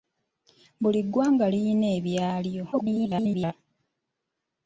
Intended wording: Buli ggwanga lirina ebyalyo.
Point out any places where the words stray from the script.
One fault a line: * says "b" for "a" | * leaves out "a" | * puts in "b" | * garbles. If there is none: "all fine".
* garbles